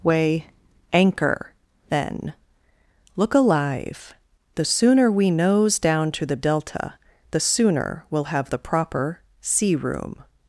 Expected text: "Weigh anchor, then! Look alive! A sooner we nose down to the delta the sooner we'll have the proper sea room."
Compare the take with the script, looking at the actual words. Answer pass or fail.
fail